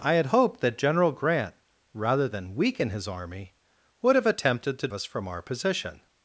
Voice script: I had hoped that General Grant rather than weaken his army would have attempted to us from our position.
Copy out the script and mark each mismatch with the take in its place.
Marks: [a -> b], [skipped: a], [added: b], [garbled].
I had hoped that General Grant rather than weaken his army would have attempted to us from our position.